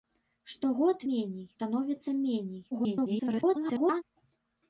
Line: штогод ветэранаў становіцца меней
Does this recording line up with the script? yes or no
no